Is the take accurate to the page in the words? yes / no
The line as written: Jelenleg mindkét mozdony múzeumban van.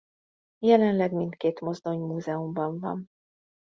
yes